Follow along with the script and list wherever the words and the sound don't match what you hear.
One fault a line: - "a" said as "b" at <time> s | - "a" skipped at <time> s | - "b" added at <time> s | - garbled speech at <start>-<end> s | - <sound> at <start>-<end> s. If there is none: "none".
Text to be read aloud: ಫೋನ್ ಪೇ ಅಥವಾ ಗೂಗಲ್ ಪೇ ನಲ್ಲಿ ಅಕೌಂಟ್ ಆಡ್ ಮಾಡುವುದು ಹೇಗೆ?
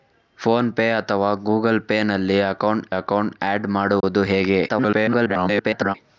- "ಅಕೌಂಟ್" added at 2.9 s
- dropout at 4.0-4.0 s
- garbled speech at 4.7-5.9 s